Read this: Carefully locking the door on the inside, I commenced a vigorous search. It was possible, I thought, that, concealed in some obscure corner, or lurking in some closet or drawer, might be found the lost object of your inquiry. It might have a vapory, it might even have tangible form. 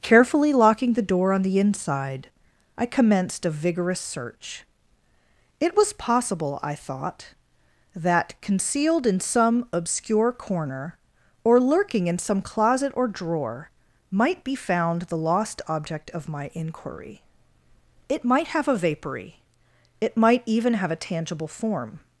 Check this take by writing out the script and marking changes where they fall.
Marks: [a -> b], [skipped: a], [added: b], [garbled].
Carefully locking the door on the inside, I commenced a vigorous search. It was possible, I thought, that, concealed in some obscure corner, or lurking in some closet or drawer, might be found the lost object of [your -> my] inquiry. It might have a vapory, it might even have [added: a] tangible form.